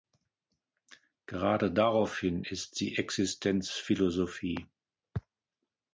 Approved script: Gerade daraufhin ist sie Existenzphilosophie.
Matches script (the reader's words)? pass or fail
pass